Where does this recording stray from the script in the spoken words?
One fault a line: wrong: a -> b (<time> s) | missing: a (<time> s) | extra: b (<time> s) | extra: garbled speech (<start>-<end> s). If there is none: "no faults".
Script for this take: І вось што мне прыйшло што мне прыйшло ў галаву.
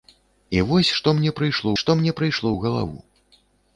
no faults